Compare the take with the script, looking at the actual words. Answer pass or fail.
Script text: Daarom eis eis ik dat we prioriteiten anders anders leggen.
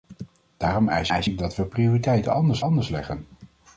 pass